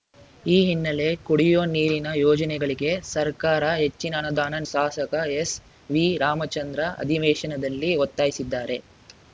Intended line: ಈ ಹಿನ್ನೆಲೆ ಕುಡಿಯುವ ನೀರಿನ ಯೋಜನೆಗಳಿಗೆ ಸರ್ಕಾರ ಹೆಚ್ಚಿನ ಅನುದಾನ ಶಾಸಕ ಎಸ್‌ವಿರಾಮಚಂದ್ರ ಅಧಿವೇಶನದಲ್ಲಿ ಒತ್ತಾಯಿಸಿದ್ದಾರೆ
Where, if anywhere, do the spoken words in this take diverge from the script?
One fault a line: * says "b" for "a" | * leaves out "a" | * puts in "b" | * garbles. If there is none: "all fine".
all fine